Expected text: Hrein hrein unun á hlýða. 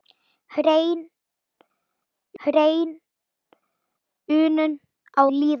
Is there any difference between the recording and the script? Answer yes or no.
no